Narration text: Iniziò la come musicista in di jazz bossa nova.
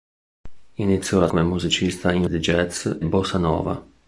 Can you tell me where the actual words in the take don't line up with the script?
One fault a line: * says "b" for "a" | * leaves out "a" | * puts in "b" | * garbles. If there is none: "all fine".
all fine